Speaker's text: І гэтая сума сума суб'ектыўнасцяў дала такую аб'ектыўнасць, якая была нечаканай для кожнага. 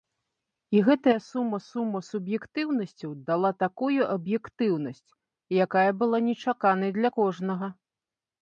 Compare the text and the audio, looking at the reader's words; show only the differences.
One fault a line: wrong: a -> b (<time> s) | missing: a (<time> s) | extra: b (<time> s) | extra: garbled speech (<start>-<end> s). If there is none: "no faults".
no faults